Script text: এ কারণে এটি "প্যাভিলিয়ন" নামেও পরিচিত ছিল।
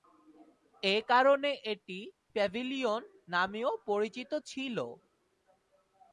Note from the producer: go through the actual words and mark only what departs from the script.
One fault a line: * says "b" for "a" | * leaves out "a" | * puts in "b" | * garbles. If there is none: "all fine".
all fine